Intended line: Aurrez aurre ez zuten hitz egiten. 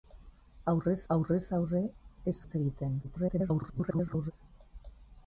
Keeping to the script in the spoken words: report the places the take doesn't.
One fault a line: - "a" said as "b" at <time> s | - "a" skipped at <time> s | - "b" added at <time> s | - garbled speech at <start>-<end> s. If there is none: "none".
- "aurrez" added at 1.1 s
- "zuten" skipped at 2.3 s
- garbled speech at 3.0-4.3 s